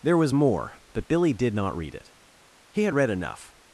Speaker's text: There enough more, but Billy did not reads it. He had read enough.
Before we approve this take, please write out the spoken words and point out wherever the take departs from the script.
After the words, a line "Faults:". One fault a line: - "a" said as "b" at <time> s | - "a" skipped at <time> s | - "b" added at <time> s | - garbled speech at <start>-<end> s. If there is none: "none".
There was more, but Billy did not read it. He had read enough.
Faults:
- "enough" said as "was" at 0.2 s
- "reads" said as "read" at 1.7 s